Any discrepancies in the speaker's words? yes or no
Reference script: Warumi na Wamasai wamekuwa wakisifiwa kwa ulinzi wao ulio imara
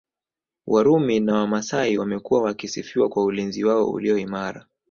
no